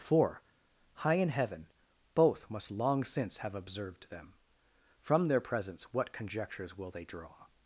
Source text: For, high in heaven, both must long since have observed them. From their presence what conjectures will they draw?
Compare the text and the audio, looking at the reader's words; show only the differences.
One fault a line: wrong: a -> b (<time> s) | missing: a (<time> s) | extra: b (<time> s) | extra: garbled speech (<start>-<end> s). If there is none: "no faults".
no faults